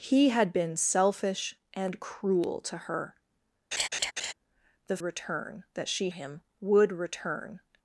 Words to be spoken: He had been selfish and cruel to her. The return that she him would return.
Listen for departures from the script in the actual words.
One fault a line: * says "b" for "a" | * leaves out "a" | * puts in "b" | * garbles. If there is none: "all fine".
all fine